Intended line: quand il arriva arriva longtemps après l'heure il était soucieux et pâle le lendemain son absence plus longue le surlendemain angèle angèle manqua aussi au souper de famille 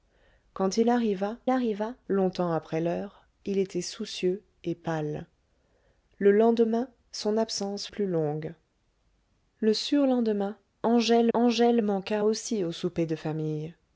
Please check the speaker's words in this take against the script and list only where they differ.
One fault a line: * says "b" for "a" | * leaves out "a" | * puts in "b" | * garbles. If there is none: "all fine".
all fine